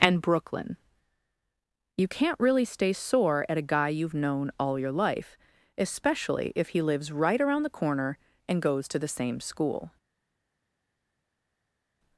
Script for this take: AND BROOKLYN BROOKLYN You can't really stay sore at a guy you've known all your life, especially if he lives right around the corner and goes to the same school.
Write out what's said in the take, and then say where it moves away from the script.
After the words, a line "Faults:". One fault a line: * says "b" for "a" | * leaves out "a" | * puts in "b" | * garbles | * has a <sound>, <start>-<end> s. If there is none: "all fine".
AND BROOKLYN You can't really stay sore at a guy you've known all your life, especially if he lives right around the corner and goes to the same school.
Faults:
* leaves out "BROOKLYN"